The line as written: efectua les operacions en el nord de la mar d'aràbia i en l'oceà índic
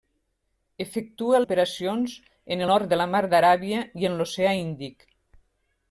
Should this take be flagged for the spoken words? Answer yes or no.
yes